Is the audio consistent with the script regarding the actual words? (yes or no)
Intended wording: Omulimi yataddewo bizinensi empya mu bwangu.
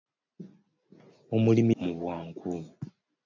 no